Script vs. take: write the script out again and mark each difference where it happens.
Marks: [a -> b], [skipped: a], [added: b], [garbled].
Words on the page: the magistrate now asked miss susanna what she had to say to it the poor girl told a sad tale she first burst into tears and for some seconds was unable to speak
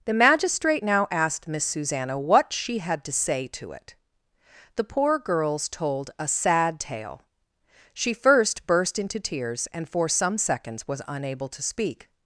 the magistrate now asked miss susanna what she had to say to it the poor [girl -> girls] told a sad tale she first burst into tears and for some seconds was unable to speak